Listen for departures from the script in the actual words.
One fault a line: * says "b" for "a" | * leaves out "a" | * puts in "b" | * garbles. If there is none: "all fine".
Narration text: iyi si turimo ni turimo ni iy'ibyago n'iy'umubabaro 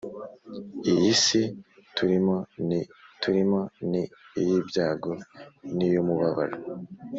all fine